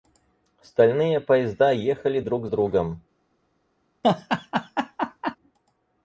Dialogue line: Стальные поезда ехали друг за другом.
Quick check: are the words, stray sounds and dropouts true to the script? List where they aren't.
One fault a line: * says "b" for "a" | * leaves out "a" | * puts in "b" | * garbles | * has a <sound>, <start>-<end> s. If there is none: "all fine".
* leaves out "за"
* has a laugh, 4.0-5.4 s